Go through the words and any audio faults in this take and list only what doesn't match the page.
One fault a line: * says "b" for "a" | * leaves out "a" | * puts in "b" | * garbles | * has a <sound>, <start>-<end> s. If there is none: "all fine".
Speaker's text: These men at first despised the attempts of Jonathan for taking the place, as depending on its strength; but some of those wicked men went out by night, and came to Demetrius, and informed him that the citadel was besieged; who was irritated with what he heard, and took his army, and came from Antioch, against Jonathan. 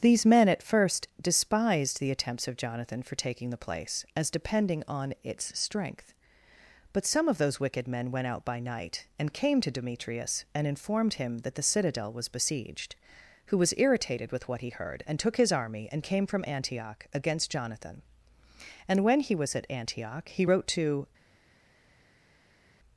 * puts in "And when he was at Antioch he wrote to"